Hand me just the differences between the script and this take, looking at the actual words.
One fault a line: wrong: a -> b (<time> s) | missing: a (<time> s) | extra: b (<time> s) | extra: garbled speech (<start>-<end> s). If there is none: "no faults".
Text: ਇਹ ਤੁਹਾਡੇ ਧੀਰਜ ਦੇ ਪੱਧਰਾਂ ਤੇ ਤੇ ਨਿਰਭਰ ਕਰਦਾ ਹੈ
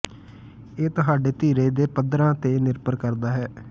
missing: ਤੇ (2.6 s)